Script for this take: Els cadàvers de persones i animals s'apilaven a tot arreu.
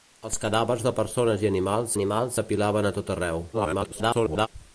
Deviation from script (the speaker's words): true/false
true